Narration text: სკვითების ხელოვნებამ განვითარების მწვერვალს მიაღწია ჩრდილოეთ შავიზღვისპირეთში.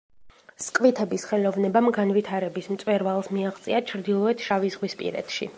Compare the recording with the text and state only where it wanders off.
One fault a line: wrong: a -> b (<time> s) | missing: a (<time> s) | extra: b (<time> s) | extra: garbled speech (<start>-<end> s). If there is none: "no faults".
no faults